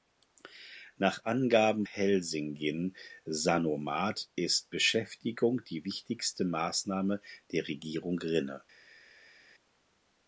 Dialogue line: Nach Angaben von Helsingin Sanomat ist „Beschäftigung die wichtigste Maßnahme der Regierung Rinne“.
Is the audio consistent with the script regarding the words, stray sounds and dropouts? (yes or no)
no